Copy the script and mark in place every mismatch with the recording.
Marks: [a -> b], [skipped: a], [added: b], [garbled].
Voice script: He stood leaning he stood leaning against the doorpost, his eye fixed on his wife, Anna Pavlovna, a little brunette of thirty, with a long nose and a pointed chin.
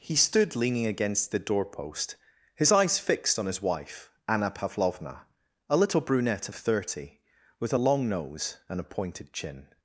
He stood leaning [skipped: he stood leaning] against the doorpost, his [eye -> eyes] fixed on his wife, Anna Pavlovna, a little brunette of thirty, with a long nose and a pointed chin.